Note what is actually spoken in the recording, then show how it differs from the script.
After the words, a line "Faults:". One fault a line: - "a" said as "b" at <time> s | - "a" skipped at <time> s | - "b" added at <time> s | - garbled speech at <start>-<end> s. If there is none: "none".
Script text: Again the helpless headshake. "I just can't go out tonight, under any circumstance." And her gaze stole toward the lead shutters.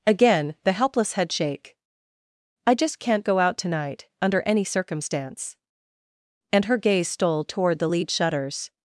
Again the helpless headshake. "I just can't go out tonight, under any circumstance." And her gaze stole toward the lead shutters.
Faults:
none